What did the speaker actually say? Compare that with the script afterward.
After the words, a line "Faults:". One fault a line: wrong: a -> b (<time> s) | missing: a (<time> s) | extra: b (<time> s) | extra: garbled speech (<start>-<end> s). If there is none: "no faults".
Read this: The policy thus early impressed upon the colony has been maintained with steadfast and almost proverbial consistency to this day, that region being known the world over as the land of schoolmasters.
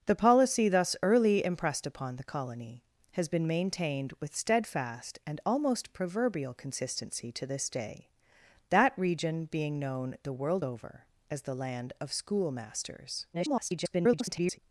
The policy thus early impressed upon the colony has been maintained with steadfast and almost proverbial consistency to this day, that region being known the world over as the land of schoolmasters. [garbled]
Faults:
extra: garbled speech (13.3-14.6 s)